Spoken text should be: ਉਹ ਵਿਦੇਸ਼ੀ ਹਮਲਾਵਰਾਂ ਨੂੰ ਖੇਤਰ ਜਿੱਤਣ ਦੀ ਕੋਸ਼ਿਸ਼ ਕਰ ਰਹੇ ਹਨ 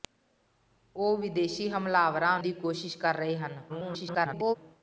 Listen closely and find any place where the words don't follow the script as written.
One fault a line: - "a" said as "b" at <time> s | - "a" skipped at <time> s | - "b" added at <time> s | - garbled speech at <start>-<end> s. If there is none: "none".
- "ਨੂੰ ਖੇਤਰ ਜਿੱਤਣ" skipped at 2.4 s
- garbled speech at 3.7-4.6 s